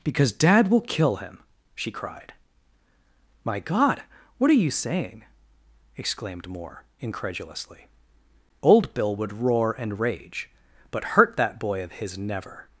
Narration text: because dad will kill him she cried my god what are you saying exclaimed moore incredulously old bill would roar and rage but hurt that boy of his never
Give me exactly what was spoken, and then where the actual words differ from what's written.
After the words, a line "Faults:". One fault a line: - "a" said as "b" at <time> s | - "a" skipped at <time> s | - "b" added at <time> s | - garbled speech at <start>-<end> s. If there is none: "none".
because dad will kill him she cried my god what are you saying exclaimed moore incredulously old bill would roar and rage but hurt that boy of his never
Faults:
none